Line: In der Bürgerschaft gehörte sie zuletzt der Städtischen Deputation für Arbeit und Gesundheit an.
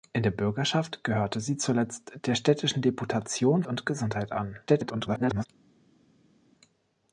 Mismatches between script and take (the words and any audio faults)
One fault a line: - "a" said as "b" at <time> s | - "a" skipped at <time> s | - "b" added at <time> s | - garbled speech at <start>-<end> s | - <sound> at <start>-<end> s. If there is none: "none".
- "für Arbeit" skipped at 3.6 s
- garbled speech at 4.7-5.5 s